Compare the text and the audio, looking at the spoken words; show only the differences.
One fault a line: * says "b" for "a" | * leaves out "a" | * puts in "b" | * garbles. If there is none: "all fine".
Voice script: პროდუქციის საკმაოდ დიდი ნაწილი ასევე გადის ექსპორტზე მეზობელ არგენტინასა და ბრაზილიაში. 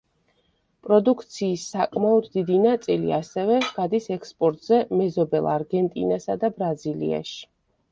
all fine